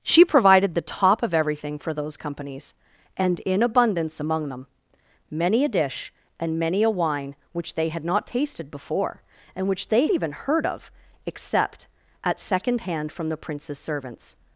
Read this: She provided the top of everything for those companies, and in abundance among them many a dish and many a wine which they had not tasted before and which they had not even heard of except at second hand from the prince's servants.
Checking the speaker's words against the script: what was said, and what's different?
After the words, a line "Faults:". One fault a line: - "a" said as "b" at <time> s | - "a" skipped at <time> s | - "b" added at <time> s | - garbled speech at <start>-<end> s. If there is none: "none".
She provided the top of everything for those companies, and in abundance among them many a dish and many a wine which they had not tasted before and which they even heard of except at second hand from the prince's servants.
Faults:
- "had not" skipped at 10.1 s